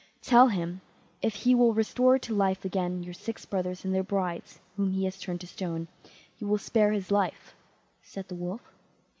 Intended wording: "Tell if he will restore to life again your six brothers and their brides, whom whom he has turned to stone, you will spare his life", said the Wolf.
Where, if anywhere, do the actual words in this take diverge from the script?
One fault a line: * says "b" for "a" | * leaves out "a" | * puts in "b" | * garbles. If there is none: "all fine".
* puts in "him"
* leaves out "whom"